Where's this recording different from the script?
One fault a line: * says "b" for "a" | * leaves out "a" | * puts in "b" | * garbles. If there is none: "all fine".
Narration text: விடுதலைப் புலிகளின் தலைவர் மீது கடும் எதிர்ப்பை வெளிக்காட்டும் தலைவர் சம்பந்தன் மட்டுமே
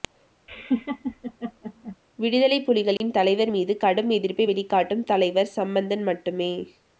all fine